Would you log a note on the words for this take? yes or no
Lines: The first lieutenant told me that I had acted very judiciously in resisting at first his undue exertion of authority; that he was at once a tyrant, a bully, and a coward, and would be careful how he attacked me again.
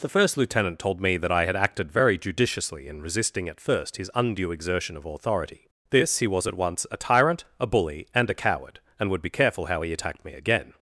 yes